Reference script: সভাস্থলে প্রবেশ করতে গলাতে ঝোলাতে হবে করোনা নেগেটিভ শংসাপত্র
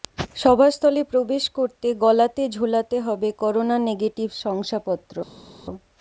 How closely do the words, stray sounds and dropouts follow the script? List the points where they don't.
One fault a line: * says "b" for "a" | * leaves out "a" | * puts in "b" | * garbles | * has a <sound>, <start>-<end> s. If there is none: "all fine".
all fine